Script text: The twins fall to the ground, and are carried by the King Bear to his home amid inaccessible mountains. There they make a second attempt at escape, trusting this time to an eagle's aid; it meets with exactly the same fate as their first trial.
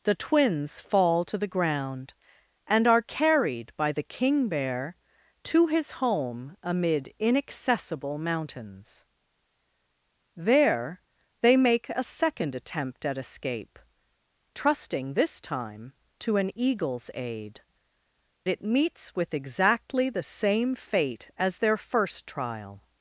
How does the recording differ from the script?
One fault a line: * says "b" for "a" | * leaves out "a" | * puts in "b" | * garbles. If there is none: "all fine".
all fine